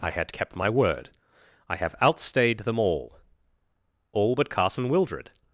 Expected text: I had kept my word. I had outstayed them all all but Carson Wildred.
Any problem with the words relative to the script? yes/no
yes